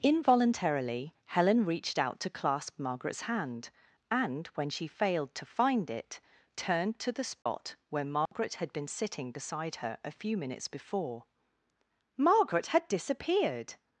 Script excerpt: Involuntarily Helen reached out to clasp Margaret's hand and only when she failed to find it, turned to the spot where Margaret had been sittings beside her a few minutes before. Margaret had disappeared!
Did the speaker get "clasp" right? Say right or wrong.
right